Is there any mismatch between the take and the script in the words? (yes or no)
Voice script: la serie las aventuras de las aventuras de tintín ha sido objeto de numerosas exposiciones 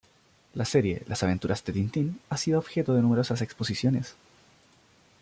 yes